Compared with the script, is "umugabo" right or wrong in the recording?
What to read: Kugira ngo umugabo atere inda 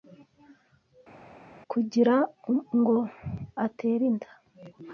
wrong